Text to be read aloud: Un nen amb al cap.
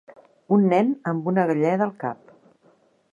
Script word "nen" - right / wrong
right